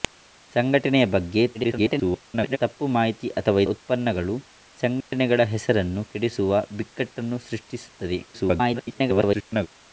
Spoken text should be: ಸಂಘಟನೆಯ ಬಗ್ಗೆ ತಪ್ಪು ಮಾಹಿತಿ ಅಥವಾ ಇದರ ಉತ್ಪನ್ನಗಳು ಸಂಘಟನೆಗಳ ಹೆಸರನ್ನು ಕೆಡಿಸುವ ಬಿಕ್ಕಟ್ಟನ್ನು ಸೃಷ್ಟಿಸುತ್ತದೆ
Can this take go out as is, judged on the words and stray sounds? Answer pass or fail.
fail